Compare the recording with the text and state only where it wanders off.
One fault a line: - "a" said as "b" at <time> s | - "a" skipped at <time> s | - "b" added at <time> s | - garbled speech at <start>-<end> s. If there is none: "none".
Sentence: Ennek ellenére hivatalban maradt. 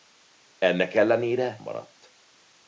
- "hivatalban" skipped at 1.6 s